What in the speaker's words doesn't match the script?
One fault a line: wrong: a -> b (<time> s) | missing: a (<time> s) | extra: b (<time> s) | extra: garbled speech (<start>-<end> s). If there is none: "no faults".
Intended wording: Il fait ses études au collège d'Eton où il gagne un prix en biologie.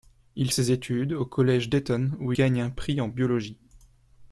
missing: fait (0.5 s)
missing: il (2.3 s)